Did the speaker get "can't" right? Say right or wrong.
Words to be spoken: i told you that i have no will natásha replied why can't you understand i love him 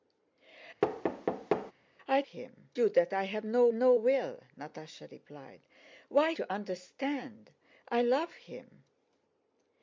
wrong